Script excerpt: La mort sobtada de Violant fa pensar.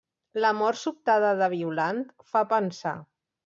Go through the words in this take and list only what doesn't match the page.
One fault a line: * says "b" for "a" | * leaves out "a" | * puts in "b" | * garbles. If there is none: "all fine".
all fine